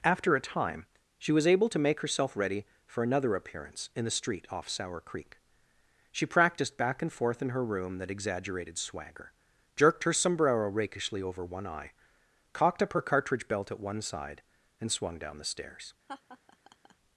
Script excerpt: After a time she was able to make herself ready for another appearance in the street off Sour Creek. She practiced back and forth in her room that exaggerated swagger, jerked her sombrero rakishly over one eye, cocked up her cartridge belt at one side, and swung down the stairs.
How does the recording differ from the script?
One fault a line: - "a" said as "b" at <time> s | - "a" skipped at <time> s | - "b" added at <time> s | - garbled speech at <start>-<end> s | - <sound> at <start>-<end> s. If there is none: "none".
- laugh at 16.1-16.9 s